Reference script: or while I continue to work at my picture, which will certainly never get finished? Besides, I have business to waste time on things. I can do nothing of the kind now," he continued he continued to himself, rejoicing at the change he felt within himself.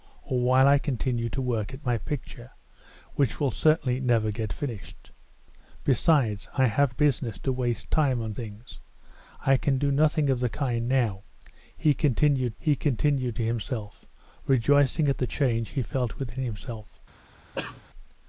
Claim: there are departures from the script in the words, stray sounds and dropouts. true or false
true